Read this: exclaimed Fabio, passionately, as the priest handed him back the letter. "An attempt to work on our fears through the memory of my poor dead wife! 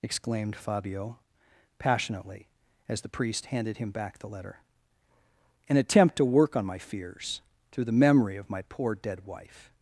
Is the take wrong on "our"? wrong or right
wrong